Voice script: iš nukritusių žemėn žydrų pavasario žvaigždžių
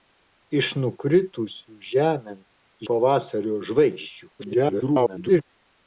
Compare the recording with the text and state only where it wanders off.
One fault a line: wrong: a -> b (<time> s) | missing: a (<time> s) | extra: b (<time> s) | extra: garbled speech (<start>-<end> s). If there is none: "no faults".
missing: žydrų (2.4 s)
extra: garbled speech (4.4-5.4 s)